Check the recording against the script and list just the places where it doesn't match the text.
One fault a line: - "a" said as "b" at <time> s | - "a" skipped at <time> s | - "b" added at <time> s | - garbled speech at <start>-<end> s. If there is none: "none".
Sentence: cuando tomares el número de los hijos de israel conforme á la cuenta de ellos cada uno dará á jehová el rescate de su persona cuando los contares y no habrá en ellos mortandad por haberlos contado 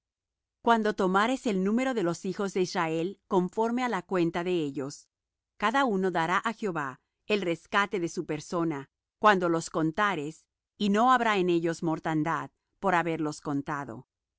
none